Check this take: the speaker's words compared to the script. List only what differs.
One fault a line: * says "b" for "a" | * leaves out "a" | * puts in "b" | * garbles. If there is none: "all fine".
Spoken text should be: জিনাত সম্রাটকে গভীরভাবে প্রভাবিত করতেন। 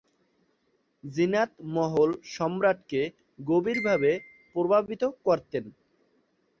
* puts in "মহল"